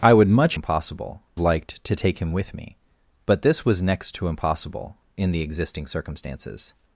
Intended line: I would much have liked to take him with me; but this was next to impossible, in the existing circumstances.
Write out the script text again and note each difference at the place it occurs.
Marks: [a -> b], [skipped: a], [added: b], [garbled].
I would much [have -> impossible] liked to take him with me; but this was next to impossible, in the existing circumstances.